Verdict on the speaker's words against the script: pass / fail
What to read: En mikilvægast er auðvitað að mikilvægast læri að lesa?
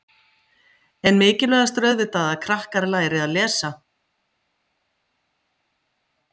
fail